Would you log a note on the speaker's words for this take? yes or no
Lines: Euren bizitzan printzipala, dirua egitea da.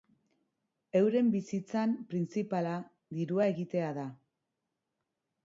no